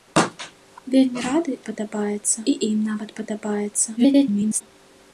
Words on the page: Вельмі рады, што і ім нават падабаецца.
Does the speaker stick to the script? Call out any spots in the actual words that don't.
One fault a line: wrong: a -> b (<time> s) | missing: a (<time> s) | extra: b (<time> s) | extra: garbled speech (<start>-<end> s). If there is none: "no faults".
wrong: што -> падабаецца (1.7 s)
extra: garbled speech (4.0-4.6 s)